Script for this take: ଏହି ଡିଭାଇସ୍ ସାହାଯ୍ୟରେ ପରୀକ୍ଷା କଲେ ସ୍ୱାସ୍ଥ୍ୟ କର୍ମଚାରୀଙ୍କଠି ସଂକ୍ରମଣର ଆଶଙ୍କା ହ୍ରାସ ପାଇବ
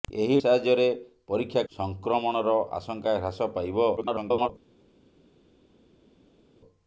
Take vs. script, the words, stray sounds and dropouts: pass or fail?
fail